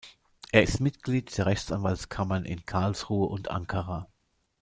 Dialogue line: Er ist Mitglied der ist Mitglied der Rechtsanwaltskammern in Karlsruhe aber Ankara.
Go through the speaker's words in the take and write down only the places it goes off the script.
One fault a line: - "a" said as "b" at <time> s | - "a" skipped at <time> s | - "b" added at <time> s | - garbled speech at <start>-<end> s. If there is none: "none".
- "ist Mitglied der" skipped at 1.5 s
- "aber" said as "und" at 3.3 s